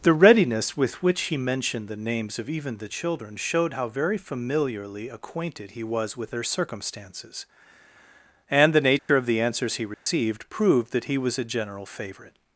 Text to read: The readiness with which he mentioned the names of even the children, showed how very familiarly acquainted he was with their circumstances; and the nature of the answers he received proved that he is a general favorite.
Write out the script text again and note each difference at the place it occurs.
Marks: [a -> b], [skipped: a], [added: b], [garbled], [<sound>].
The readiness with which he mentioned the names of even the children, showed how very familiarly acquainted he was with their circumstances; and the nature [dropout] of the answers he received [dropout] proved that he [is -> was] a general favorite.